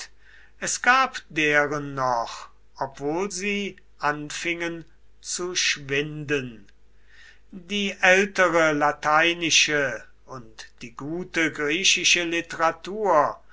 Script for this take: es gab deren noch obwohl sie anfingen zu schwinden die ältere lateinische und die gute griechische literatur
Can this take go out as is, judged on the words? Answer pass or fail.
pass